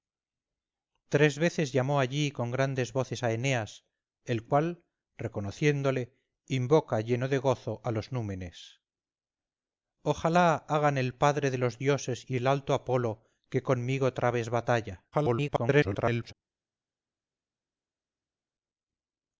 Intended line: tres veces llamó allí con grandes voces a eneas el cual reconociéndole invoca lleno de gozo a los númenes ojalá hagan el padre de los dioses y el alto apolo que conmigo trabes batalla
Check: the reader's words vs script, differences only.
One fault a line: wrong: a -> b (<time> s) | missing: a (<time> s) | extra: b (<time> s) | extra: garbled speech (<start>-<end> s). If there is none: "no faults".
extra: garbled speech (15.1-16.3 s)